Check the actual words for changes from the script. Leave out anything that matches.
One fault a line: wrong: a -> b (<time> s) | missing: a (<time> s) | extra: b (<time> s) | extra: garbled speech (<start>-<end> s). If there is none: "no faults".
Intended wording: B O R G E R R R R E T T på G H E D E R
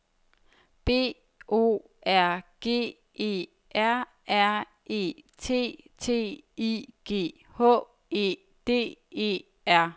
missing: R R (4.7 s)
wrong: på -> I (6.6 s)